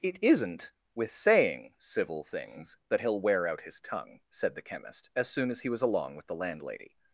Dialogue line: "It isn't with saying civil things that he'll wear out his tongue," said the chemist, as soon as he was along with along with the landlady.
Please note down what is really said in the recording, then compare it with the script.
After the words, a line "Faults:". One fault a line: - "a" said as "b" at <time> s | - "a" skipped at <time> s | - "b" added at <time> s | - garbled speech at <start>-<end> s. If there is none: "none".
"It isn't with saying civil things that he'll wear out his tongue," said the chemist, as soon as he was along with the landlady.
Faults:
- "along with" skipped at 6.3 s